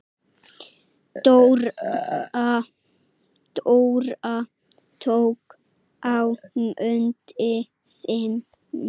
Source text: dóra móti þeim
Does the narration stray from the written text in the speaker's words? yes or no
yes